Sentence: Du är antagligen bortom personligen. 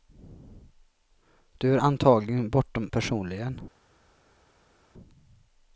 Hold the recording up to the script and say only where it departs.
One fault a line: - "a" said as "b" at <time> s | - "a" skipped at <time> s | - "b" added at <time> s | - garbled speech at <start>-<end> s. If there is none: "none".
none